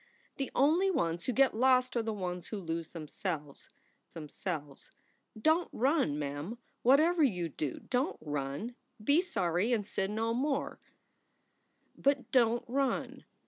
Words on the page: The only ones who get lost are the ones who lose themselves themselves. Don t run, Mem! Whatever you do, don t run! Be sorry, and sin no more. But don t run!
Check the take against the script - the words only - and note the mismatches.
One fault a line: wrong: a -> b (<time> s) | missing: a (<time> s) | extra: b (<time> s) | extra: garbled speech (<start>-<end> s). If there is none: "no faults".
no faults